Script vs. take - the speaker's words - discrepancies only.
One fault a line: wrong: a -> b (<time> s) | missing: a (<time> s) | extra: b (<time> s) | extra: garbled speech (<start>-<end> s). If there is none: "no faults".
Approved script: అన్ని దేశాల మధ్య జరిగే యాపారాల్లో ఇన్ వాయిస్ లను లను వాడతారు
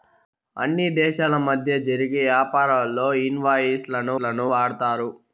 no faults